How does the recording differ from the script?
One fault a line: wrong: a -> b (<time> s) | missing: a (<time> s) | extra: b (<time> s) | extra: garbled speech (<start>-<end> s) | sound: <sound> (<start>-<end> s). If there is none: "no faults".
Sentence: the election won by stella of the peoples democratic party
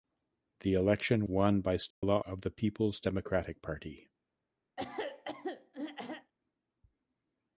sound: dropout (1.9-2.0 s)
sound: throat clearing (4.8-6.3 s)